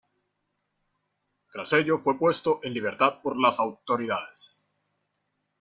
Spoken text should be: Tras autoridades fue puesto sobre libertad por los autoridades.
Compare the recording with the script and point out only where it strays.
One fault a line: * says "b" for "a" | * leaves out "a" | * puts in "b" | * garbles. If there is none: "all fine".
* says "ello" for "autoridades"
* says "en" for "sobre"
* says "las" for "los"